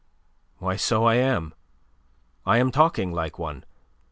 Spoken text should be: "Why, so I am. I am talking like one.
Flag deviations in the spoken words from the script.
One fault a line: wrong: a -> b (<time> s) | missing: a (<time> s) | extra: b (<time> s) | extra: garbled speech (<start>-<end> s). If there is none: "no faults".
no faults